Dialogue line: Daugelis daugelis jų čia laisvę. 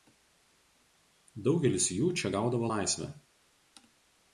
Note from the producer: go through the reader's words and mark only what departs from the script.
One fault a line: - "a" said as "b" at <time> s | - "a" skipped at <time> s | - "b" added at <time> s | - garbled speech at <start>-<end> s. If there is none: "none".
- "daugelis" skipped at 1.9 s
- "gaudavo" added at 2.4 s